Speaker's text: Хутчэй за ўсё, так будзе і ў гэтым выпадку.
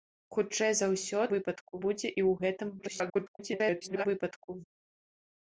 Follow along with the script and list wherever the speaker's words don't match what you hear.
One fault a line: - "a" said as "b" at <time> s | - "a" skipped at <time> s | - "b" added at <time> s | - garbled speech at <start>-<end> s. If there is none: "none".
- "так" said as "выпадку" at 1.3 s
- garbled speech at 2.8-4.1 s